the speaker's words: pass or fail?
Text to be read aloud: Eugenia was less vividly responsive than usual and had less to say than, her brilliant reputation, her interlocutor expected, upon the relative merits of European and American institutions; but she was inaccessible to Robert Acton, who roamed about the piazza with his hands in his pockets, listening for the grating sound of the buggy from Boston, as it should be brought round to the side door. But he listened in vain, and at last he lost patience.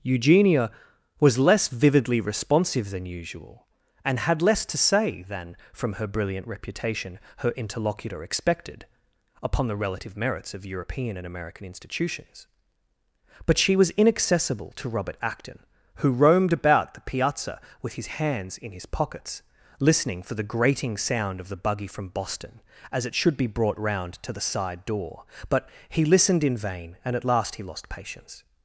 fail